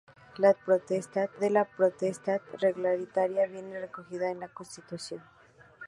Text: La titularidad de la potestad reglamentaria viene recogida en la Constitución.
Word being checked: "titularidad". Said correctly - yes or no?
no